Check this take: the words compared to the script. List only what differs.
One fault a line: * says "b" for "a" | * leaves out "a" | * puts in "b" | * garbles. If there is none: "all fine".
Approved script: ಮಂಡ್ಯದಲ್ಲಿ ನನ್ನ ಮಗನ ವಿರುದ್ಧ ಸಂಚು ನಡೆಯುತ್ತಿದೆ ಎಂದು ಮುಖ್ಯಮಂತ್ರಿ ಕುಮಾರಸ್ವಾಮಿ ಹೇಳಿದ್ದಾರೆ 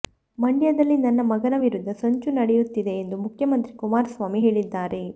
all fine